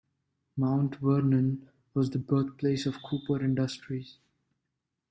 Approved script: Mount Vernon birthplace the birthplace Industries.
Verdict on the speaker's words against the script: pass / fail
fail